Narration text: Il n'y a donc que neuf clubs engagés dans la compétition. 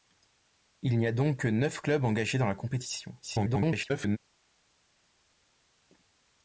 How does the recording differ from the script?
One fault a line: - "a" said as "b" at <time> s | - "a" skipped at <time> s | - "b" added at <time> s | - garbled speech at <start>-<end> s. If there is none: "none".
- garbled speech at 3.2-4.2 s